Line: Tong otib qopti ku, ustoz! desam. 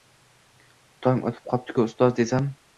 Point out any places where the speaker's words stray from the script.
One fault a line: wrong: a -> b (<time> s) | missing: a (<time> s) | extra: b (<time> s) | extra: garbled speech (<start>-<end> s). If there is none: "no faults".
no faults